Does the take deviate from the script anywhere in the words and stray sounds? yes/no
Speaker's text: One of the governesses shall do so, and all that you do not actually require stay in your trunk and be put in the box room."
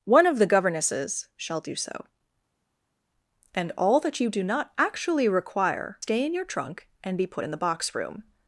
no